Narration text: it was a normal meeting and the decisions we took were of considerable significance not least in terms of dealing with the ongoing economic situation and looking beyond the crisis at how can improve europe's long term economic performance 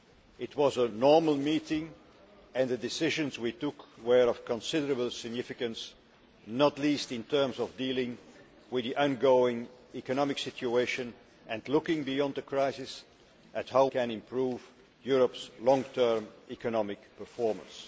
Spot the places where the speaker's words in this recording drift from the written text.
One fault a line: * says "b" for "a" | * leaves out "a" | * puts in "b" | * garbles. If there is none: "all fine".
all fine